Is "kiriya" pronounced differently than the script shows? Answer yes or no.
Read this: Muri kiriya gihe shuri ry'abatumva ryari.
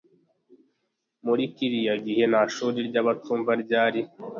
no